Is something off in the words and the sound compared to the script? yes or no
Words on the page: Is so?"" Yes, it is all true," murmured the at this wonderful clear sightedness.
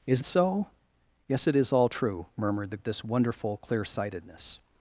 no